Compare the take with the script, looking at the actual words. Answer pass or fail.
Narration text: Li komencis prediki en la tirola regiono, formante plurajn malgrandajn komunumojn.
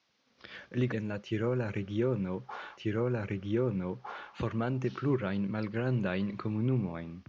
fail